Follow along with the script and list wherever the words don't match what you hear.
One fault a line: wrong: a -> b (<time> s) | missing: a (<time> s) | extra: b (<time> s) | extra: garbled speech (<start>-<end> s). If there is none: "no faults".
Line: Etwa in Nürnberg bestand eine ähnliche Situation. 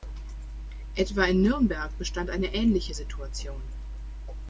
no faults